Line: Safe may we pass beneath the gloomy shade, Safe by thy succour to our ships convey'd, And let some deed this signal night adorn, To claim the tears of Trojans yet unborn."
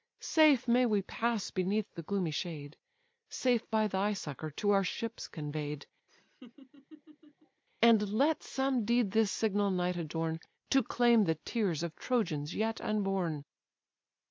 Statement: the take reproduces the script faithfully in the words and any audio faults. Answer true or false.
false